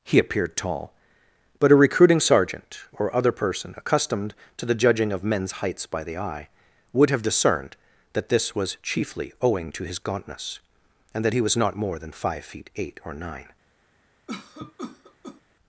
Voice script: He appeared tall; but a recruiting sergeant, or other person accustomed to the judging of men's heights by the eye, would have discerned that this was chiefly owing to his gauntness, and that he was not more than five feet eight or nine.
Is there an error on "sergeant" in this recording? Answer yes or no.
no